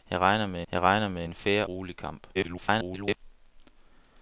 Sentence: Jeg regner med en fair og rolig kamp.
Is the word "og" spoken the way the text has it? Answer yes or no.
no